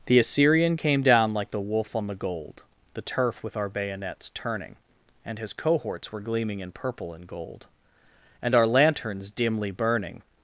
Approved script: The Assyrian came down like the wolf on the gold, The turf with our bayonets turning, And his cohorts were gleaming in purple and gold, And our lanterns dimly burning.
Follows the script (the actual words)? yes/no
yes